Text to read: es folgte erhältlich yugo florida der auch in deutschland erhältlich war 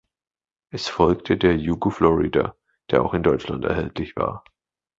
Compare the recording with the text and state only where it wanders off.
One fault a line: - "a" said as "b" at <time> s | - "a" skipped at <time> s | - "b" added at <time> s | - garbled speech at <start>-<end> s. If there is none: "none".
- "erhältlich" said as "der" at 1.4 s